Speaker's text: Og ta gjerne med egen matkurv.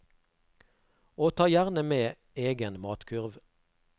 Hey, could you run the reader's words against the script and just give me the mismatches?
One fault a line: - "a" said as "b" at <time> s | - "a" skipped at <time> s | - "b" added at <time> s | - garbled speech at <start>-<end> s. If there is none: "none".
none